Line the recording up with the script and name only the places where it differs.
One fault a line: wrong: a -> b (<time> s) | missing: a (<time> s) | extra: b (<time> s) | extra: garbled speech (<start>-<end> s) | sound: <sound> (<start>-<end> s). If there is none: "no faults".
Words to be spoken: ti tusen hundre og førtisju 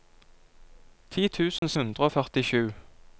sound: dropout (1.6-1.6 s)